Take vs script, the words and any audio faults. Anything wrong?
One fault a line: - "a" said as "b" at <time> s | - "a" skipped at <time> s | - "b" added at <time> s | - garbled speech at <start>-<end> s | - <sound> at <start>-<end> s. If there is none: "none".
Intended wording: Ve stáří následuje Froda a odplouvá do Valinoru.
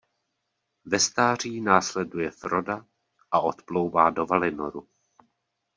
none